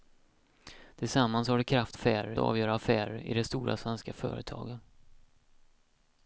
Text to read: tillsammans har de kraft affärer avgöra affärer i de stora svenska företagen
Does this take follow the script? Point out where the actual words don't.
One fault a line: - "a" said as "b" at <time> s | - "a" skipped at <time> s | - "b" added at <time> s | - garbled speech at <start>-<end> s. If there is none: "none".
none